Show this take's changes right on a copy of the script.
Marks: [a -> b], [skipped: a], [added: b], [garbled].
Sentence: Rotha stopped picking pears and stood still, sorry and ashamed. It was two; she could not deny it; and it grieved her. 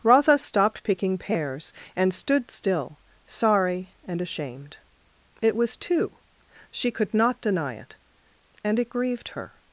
Rotha stopped picking pears and stood still, sorry and ashamed. It was two; she could not deny it; and it grieved her.